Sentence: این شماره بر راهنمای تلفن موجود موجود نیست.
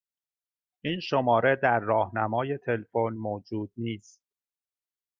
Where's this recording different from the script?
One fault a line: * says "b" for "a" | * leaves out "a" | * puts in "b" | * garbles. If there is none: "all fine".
* says "در" for "بر"
* leaves out "موجود"